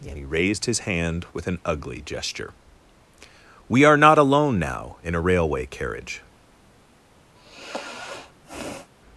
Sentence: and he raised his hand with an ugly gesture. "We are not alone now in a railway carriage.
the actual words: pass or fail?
pass